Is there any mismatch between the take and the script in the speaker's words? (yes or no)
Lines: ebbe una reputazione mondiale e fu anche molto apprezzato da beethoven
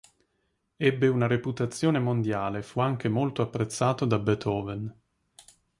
no